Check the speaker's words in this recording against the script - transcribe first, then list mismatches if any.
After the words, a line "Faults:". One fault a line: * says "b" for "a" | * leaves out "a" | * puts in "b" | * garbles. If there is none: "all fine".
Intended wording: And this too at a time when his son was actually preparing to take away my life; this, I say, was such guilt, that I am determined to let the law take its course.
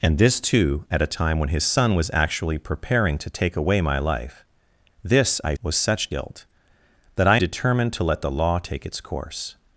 And this too at a time when his son was actually preparing to take away my life; this, I was such guilt, that I determined to let the law take its course.
Faults:
* leaves out "say"
* leaves out "am"